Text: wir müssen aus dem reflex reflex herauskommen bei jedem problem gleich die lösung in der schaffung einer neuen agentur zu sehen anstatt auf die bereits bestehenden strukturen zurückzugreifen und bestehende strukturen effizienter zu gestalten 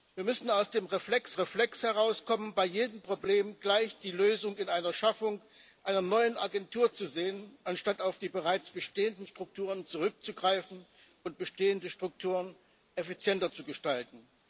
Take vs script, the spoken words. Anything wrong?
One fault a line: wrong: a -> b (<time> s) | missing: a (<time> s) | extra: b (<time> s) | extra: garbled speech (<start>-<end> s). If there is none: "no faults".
no faults